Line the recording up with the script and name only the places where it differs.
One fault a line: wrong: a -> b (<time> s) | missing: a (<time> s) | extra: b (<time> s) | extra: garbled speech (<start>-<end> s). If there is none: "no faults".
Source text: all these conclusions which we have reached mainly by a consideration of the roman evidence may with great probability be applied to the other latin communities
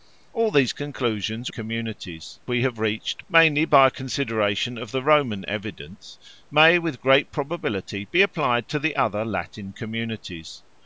wrong: which -> communities (1.5 s)